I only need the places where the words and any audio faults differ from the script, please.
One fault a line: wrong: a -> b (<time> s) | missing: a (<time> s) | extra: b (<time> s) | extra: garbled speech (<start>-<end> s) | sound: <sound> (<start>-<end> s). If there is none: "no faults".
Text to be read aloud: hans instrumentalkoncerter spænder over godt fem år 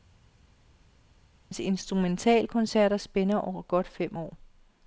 no faults